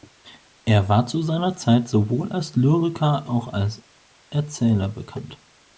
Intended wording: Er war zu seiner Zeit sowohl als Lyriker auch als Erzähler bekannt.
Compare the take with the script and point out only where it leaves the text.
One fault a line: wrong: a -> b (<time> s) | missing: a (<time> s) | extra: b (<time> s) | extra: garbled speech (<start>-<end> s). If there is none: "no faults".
no faults